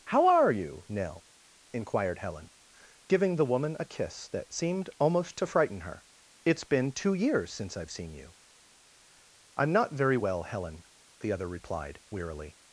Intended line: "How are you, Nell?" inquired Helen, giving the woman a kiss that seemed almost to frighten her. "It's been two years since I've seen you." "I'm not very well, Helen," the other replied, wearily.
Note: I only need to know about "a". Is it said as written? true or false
true